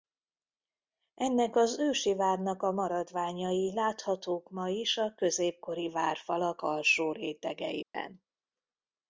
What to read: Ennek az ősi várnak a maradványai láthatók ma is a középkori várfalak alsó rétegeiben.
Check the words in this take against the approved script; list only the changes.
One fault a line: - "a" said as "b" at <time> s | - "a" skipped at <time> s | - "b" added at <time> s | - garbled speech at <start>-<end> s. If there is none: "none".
none